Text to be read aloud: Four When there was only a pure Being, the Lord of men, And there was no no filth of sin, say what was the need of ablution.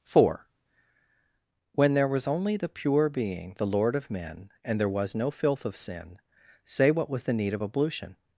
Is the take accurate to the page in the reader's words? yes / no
no